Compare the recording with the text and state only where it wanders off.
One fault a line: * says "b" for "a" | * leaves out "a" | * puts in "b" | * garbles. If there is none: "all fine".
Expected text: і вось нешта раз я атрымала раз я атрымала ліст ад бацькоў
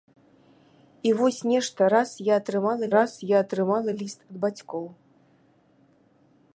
all fine